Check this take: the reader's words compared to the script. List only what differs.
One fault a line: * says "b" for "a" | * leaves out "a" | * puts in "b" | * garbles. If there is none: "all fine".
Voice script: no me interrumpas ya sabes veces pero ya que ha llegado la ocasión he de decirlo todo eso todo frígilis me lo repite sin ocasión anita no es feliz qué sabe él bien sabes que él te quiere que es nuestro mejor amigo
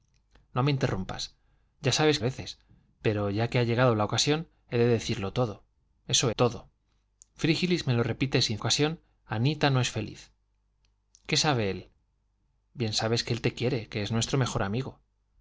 all fine